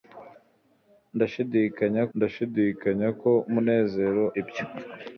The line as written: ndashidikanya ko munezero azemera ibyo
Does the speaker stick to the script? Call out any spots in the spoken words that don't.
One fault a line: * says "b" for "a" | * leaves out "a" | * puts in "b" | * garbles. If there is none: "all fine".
* puts in "ndashidikanya"
* leaves out "azemera"